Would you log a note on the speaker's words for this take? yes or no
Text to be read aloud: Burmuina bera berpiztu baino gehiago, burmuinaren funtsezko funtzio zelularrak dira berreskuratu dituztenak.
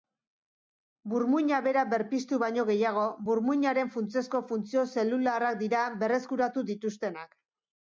no